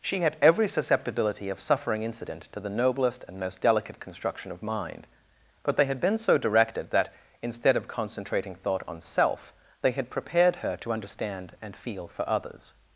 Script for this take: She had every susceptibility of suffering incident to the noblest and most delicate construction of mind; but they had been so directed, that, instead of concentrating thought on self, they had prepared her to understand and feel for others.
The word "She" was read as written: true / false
true